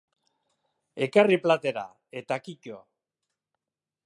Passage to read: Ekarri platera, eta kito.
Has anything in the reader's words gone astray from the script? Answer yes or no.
no